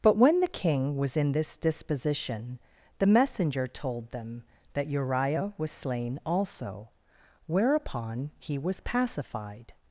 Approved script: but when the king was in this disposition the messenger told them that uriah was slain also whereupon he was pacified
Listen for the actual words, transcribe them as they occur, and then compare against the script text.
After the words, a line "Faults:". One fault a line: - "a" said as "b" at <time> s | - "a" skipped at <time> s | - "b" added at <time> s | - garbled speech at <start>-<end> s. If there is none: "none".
but when the king was in this disposition the messenger told them that uriah was slain also whereupon he was pacified
Faults:
none